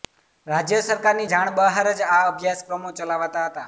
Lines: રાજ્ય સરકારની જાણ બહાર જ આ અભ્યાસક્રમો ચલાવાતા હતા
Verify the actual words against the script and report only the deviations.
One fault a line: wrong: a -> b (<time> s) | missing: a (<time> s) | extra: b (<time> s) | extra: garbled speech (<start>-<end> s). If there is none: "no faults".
no faults